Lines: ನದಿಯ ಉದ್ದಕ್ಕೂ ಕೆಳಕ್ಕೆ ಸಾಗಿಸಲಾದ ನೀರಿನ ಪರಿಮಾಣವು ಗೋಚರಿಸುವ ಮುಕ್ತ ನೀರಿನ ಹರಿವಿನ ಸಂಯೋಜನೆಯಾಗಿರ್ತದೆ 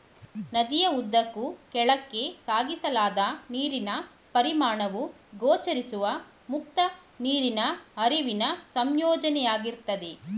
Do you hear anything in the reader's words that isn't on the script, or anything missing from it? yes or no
no